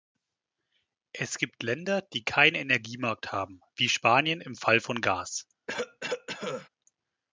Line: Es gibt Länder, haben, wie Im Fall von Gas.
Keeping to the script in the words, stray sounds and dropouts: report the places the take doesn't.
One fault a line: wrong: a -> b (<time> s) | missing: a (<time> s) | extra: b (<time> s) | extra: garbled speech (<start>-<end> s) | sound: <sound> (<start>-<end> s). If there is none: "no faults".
extra: die keinen Energiemarkt (2.0 s)
extra: Spanien (3.9 s)
sound: cough (5.7-6.7 s)